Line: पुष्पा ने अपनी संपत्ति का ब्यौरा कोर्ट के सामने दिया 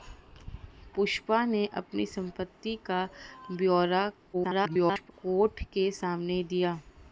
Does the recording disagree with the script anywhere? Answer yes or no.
yes